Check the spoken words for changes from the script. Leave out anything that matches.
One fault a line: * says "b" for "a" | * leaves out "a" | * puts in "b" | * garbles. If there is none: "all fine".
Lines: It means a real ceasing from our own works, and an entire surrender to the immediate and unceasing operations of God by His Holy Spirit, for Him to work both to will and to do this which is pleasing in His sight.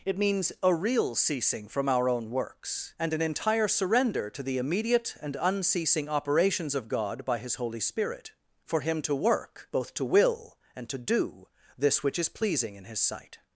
all fine